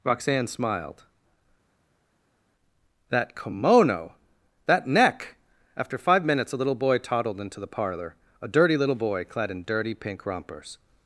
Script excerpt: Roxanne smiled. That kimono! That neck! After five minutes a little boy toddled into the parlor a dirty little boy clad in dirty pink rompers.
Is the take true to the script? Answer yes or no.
yes